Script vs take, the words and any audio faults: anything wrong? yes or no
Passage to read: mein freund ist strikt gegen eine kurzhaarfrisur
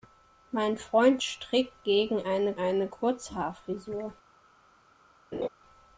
yes